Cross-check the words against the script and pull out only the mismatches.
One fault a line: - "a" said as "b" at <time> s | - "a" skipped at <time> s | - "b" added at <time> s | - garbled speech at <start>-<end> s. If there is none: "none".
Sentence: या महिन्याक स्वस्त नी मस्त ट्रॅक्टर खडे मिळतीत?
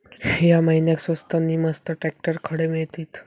none